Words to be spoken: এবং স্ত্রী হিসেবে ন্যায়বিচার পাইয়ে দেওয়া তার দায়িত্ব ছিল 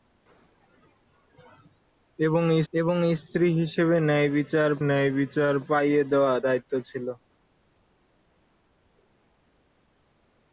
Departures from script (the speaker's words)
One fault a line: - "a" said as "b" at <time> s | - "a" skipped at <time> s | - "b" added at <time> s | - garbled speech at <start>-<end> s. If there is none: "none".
- "এবং" added at 2.7 s
- "ন্যায়বিচার" added at 4.9 s
- "তার" skipped at 6.3 s